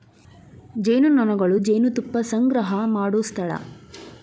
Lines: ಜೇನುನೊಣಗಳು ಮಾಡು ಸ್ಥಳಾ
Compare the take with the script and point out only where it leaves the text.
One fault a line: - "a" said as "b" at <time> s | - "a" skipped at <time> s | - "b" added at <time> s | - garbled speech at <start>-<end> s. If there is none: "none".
- "ಜೇನುತುಪ್ಪಾ ಸಂಗ್ರಹಾ" added at 1.6 s